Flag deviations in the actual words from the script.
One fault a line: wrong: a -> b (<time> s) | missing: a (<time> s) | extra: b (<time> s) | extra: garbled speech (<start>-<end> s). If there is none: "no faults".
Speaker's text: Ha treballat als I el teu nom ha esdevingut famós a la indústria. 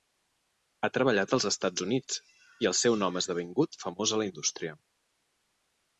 extra: Estats Units (1.5 s)
wrong: teu -> seu (2.8 s)